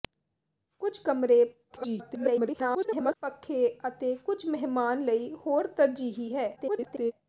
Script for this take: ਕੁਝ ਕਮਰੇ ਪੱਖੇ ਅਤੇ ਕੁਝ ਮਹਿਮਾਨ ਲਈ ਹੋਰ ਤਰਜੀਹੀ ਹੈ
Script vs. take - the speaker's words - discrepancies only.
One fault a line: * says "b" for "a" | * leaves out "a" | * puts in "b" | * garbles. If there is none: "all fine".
* garbles
* garbles